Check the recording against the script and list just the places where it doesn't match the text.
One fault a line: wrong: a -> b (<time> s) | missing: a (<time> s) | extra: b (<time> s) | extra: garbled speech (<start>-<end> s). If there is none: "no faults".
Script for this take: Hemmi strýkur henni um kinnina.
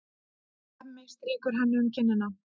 no faults